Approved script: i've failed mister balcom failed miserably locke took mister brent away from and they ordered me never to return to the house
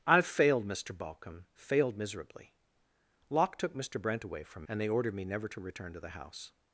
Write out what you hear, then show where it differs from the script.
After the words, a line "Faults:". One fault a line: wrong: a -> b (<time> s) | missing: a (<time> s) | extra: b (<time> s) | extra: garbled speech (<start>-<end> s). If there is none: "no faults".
i've failed mister balcom failed miserably locke took mister brent away from and they ordered me never to return to the house
Faults:
no faults